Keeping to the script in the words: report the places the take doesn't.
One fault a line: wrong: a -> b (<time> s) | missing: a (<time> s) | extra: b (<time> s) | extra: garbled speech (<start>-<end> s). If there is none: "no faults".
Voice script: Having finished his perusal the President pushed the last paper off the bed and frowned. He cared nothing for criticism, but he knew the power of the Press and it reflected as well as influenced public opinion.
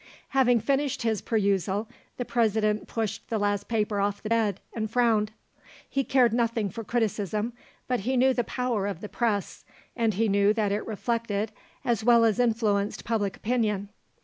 extra: he knew that (10.1 s)